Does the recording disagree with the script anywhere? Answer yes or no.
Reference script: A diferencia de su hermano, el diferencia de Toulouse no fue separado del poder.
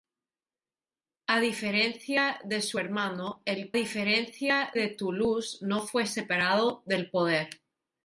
no